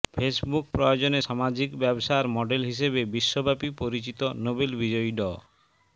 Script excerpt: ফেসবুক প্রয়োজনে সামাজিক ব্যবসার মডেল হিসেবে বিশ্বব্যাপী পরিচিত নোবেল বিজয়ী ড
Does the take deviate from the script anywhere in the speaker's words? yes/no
no